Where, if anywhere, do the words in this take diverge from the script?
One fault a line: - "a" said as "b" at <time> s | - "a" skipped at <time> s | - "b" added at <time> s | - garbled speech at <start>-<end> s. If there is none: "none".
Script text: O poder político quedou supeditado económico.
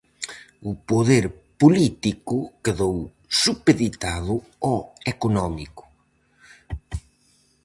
- "ao" added at 4.7 s